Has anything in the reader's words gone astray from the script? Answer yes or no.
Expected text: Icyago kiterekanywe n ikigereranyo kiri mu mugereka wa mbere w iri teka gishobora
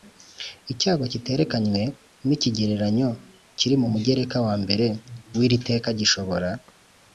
no